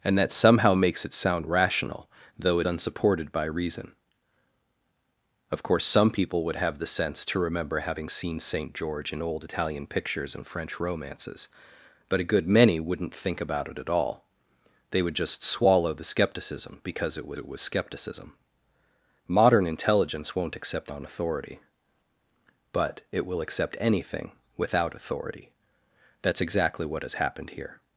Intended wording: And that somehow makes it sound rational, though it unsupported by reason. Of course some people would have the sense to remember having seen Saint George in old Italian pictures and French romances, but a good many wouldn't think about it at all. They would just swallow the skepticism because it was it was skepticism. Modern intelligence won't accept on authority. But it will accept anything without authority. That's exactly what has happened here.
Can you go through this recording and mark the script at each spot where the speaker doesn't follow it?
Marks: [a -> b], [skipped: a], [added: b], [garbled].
And that somehow makes it sound rational, though it unsupported by reason. Of course some people would have the sense to remember having seen Saint George in old Italian pictures and French romances, but a good many wouldn't think about it at all. They would just swallow the skepticism because it was it was skepticism. Modern intelligence won't accept on authority. But it will accept anything without authority. That's exactly what has happened here.